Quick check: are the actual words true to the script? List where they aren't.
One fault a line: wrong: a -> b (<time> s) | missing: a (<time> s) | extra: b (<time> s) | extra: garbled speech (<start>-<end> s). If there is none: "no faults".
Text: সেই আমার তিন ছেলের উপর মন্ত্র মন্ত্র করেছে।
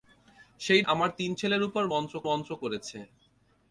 no faults